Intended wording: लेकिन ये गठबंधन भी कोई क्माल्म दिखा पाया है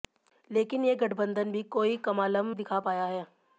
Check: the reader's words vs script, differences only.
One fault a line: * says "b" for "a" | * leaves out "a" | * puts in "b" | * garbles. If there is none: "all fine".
all fine